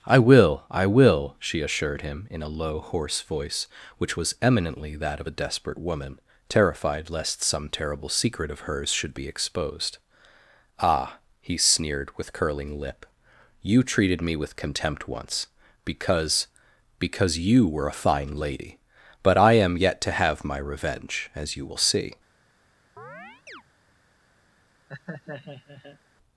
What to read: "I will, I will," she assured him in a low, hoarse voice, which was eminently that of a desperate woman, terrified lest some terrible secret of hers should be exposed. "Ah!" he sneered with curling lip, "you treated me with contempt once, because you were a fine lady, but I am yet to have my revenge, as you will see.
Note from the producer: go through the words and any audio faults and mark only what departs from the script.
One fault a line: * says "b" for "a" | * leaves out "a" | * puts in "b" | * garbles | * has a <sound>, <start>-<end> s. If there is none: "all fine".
* puts in "because"
* has a chirp, 23.0-23.6 s
* has a laugh, 24.9-26.0 s